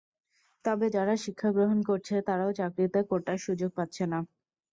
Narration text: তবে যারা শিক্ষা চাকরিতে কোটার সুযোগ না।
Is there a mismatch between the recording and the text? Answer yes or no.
yes